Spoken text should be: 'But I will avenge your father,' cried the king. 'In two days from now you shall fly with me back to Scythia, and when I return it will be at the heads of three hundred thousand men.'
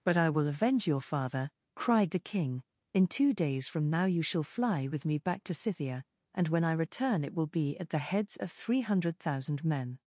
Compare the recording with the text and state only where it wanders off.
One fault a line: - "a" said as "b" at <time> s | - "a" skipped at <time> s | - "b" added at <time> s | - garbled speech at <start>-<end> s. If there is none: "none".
none